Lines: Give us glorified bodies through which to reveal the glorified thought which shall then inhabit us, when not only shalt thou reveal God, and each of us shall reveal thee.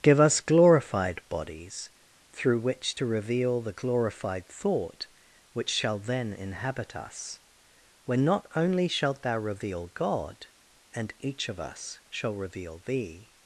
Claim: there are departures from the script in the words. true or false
false